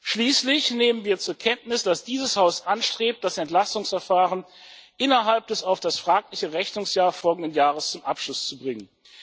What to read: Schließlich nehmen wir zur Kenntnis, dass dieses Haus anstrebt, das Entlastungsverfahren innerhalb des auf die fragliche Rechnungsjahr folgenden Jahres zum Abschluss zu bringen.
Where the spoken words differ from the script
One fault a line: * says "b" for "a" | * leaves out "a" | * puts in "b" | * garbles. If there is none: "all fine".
* says "das" for "die"